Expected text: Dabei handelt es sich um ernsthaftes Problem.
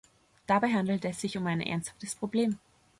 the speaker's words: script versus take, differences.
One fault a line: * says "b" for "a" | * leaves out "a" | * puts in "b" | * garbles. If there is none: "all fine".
* puts in "ein"